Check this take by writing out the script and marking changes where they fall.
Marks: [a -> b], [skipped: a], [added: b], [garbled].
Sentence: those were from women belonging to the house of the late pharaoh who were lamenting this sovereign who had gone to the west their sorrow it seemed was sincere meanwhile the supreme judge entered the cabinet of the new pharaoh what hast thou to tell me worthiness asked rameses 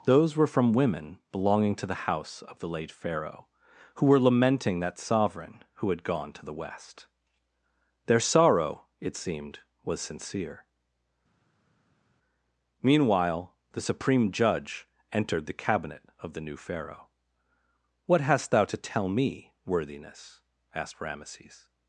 those were from women belonging to the house of the late pharaoh who were lamenting [this -> that] sovereign who had gone to the west their sorrow it seemed was sincere meanwhile the supreme judge entered the cabinet of the new pharaoh what hast thou to tell me worthiness asked rameses